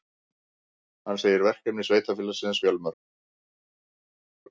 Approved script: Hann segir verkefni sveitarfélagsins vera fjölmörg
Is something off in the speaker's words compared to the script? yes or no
yes